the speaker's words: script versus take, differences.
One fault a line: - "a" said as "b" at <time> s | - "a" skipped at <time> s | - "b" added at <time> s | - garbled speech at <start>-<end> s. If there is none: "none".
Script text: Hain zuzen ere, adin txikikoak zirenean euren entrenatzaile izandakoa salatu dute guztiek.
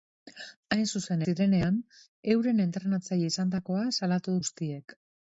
- "ere adin txikikoak" skipped at 1.2 s
- "dute" skipped at 4.4 s